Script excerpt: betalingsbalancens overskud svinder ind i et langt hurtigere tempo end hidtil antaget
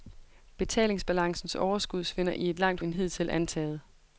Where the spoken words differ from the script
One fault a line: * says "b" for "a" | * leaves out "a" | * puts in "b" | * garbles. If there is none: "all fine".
* leaves out "ind"
* leaves out "hurtigere tempo"